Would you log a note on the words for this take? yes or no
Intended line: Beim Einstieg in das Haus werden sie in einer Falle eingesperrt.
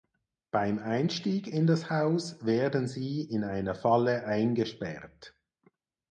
no